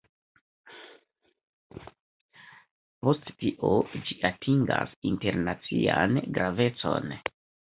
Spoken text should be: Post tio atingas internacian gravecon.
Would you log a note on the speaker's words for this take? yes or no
yes